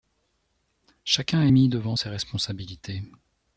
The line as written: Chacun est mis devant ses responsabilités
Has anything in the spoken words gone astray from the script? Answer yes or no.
no